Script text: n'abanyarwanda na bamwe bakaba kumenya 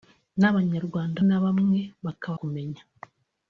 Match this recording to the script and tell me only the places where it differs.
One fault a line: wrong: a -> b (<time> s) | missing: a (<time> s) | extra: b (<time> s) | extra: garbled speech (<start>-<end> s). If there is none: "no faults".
no faults